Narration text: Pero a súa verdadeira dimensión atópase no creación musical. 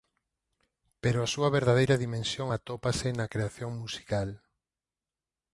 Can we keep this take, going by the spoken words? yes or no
no